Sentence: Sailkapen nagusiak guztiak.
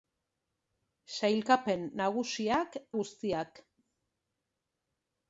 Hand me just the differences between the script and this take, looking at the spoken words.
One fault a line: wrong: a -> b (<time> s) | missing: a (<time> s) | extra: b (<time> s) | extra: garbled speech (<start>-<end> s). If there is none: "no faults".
no faults